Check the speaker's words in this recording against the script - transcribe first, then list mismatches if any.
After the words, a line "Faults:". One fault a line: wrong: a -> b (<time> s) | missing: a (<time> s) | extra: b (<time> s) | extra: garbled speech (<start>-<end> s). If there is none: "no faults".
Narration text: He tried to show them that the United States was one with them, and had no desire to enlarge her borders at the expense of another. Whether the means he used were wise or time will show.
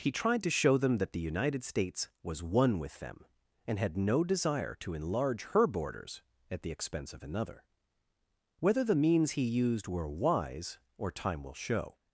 He tried to show them that the United States was one with them, and had no desire to enlarge her borders at the expense of another. Whether the means he used were wise or time will show.
Faults:
no faults